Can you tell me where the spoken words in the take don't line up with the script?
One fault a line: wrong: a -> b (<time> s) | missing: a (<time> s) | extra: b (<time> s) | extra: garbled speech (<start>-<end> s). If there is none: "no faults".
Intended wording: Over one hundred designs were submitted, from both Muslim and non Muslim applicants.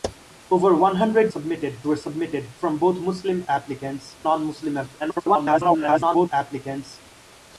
wrong: designs -> submitted (1.3 s)
wrong: and -> applicants (3.5 s)
extra: garbled speech (5.0-6.3 s)